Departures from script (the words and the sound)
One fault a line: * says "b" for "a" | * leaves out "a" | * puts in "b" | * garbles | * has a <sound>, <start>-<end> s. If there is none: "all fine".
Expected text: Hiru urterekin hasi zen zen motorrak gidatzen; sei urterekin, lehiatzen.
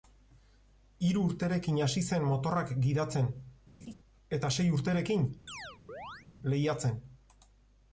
* leaves out "zen"
* has a laugh, 3.8-3.9 s
* puts in "eta"
* has a chirp, 5.5-6.3 s